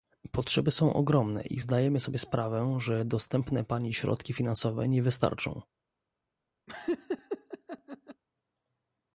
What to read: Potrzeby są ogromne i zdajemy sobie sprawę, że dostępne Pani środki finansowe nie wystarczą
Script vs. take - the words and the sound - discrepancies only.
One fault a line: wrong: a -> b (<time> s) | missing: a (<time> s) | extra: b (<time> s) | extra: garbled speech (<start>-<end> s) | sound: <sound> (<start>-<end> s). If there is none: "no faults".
sound: laugh (6.7-8.2 s)